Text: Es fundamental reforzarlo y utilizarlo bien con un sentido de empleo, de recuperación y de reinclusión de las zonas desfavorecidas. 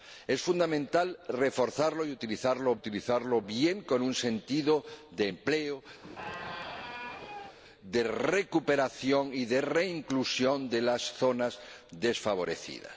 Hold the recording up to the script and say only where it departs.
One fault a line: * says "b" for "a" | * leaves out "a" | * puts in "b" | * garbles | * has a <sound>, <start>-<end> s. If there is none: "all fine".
* puts in "utilizarlo"
* has a squeak, 6.0-7.6 s